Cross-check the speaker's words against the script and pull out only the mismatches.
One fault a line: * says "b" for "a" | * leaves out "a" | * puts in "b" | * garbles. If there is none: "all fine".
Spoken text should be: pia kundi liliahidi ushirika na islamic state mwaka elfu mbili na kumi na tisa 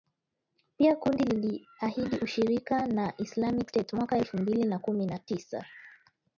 all fine